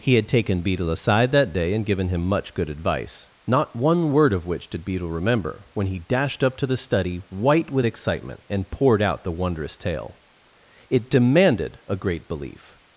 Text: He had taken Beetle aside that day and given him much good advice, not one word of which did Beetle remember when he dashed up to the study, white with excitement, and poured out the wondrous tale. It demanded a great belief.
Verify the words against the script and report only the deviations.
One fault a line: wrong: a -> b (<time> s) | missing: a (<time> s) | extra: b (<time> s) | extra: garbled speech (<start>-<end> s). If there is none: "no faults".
no faults